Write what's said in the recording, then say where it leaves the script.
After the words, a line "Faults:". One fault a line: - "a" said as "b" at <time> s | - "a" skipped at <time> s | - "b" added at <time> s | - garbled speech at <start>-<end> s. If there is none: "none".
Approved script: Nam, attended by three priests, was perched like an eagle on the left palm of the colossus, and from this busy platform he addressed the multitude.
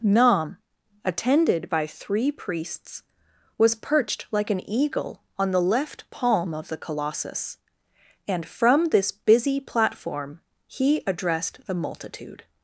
Nam, attended by three priests, was perched like an eagle on the left palm of the colossus, and from this busy platform he addressed the multitude.
Faults:
none